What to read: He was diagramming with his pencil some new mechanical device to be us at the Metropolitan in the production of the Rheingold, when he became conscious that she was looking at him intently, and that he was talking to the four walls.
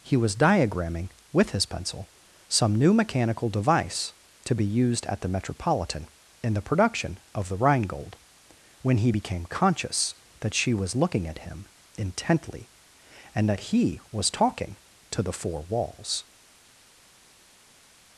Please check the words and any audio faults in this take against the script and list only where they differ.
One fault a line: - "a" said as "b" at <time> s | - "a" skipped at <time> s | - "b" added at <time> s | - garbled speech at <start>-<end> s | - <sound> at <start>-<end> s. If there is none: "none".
- "us" said as "used" at 4.7 s